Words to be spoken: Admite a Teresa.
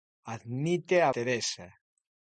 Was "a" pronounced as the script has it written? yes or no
yes